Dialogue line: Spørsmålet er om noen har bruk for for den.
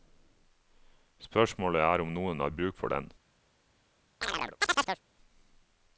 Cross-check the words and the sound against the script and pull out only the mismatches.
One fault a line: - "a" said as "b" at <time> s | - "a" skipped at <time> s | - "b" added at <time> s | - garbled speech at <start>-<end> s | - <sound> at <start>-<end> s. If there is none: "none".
- "for" skipped at 2.9 s
- chirp at 4.2-5.0 s